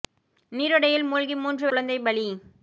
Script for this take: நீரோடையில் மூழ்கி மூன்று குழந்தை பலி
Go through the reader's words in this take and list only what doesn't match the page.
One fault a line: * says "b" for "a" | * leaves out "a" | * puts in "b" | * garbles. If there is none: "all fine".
all fine